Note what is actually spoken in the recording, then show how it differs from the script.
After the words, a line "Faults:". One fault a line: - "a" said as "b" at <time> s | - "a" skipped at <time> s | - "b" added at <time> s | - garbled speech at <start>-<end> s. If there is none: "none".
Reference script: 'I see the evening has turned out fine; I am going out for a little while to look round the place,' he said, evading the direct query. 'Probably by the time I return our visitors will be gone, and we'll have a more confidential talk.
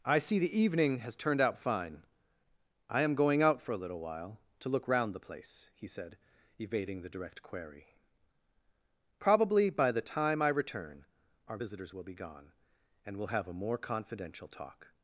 'I see the evening has turned out fine; I am going out for a little while to look round the place,' he said, evading the direct query. 'Probably by the time I return our visitors will be gone, and we'll have a more confidential talk.
Faults:
none